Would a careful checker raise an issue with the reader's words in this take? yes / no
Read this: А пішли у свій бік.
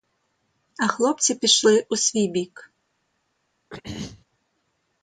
yes